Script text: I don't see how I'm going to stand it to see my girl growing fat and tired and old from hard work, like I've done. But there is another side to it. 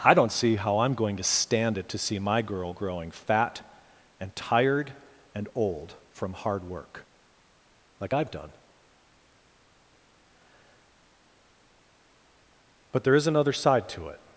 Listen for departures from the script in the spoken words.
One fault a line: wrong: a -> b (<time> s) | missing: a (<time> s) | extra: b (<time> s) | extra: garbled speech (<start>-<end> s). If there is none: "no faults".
no faults